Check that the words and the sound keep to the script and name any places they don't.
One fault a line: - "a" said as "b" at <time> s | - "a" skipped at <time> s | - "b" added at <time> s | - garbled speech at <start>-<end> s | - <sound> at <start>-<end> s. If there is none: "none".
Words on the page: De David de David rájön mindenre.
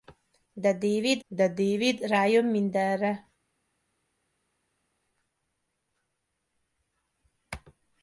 none